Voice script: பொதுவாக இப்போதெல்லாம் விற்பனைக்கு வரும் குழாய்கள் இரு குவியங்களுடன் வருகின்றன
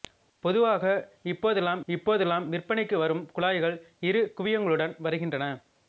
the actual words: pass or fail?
fail